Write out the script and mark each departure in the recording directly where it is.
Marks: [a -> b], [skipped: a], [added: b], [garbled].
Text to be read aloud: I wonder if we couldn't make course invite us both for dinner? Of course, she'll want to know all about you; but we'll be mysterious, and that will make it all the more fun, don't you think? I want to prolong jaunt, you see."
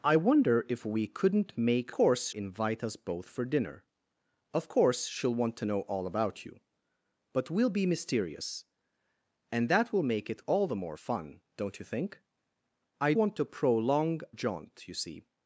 I wonder if we couldn't make course invite us both for dinner? Of course, she'll want to know all about you; but we'll be mysterious, and that will make it all the more fun, don't you think? I want to prolong jaunt, you see."